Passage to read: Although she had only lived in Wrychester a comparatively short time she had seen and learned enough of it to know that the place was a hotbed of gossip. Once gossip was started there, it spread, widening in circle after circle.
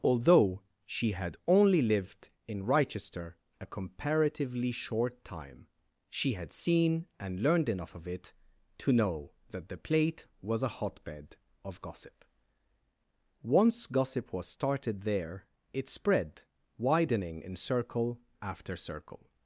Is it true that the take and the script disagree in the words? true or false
true